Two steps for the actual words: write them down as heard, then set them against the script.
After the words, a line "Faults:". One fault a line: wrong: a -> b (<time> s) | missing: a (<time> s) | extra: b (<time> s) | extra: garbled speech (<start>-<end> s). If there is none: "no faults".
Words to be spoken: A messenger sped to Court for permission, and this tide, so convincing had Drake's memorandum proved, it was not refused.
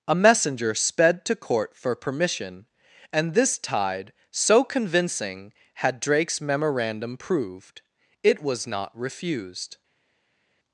A messenger sped to Court for permission, and this tide, so convincing had Drake's memorandum proved, it was not refused.
Faults:
no faults